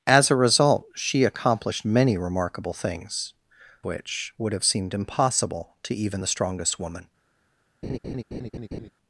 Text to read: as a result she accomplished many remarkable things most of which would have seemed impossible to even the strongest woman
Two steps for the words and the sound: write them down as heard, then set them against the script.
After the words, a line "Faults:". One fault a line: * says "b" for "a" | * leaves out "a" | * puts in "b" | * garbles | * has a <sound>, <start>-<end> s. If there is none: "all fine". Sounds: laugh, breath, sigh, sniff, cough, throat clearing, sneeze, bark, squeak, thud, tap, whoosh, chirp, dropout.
as a result she accomplished many remarkable things which would have seemed impossible to even the strongest woman
Faults:
* leaves out "most of"
* has a laugh, 7.8-8.9 s